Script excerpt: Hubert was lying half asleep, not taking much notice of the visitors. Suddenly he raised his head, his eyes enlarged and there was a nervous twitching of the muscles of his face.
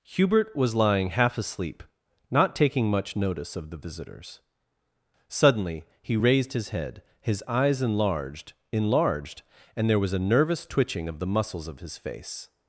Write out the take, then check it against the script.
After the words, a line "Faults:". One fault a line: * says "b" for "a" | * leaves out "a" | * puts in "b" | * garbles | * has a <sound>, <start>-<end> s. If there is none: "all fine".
Hubert was lying half asleep, not taking much notice of the visitors. Suddenly he raised his head, his eyes enlarged enlarged and there was a nervous twitching of the muscles of his face.
Faults:
* puts in "enlarged"